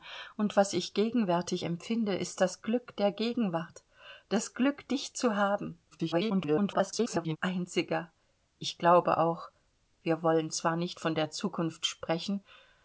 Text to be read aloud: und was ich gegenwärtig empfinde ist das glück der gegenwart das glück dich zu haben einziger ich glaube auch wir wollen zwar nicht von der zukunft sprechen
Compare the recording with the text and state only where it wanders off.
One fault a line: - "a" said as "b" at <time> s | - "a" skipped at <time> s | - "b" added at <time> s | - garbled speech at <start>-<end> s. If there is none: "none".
- garbled speech at 5.9-7.4 s